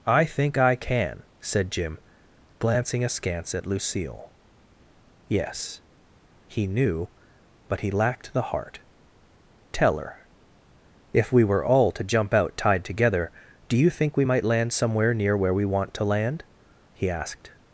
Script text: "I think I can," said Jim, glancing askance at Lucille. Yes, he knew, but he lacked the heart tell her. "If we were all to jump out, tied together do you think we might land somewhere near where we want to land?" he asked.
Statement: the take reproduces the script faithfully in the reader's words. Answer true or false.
true